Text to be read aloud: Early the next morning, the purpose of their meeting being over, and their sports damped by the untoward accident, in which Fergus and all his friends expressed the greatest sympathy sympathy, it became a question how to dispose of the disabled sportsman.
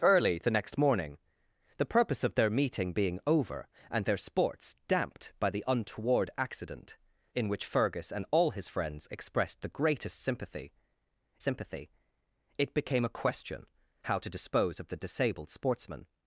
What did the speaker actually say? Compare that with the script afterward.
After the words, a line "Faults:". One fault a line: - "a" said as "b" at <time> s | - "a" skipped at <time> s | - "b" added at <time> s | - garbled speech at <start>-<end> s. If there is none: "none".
Early the next morning, the purpose of their meeting being over, and their sports damped by the untoward accident, in which Fergus and all his friends expressed the greatest sympathy sympathy, it became a question how to dispose of the disabled sportsman.
Faults:
none